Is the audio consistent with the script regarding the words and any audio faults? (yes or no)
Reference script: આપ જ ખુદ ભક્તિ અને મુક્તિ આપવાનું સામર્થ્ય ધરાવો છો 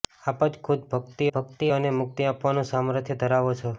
no